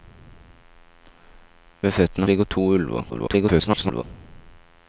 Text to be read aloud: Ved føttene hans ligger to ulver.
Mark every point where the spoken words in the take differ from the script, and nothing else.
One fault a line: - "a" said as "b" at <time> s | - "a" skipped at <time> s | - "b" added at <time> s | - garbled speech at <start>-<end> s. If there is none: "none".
- "hans" skipped at 2.3 s
- garbled speech at 3.1-4.0 s